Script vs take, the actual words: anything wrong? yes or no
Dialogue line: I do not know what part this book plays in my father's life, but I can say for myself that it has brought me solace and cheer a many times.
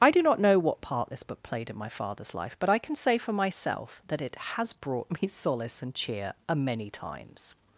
yes